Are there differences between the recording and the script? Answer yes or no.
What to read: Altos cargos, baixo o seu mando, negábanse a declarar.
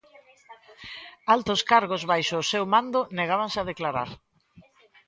no